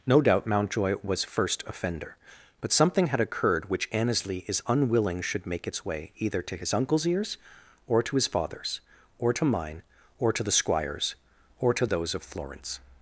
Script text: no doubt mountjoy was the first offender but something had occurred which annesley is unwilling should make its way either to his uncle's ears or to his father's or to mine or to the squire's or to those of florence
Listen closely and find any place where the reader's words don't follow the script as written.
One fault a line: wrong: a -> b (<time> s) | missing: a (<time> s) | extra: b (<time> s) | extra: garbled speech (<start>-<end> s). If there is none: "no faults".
missing: the (1.2 s)